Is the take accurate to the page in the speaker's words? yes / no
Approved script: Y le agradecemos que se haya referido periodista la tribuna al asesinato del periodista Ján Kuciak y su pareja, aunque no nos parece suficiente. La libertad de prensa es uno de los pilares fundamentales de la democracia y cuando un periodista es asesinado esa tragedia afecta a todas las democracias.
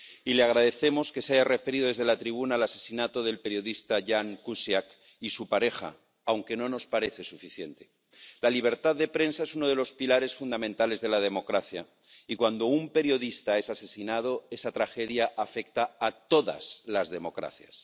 no